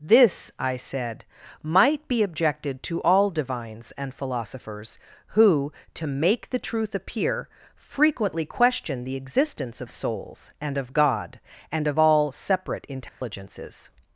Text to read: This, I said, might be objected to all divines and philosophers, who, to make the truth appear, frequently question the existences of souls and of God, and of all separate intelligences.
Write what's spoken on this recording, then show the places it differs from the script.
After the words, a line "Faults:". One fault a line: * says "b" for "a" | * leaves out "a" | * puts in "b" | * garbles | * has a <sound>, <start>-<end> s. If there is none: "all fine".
This, I said, might be objected to all divines and philosophers, who, to make the truth appear, frequently question the existence of souls and of God, and of all separate intelligences.
Faults:
* says "existence" for "existences"
* has a dropout, 13.1-13.2 s